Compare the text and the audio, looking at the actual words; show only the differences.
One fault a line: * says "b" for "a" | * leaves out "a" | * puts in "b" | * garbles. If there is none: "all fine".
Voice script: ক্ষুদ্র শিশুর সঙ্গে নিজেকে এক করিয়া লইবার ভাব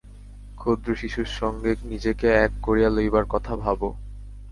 * puts in "কথা"